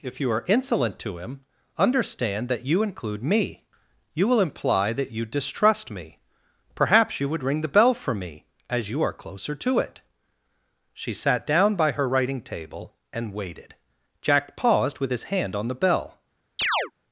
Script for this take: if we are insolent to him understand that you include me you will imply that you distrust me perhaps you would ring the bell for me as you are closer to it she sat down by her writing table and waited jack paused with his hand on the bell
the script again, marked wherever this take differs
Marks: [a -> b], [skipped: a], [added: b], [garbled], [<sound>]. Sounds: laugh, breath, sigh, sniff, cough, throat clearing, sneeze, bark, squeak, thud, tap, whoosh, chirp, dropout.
if [we -> you] are insolent to him understand that you include me you will imply that you distrust me perhaps you would ring the bell for me as you are closer to it she sat down by her writing table and waited jack paused with his hand on the bell [chirp]